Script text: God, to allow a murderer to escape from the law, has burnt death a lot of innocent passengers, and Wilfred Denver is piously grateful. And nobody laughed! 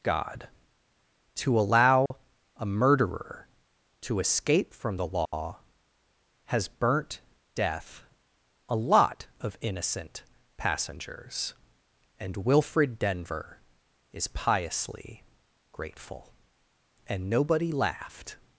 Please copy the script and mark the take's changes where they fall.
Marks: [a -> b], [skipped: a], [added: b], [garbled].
God, to allow a murderer to escape from the law, has burnt death a lot of innocent passengers, and Wilfred Denver is piously grateful. And nobody laughed!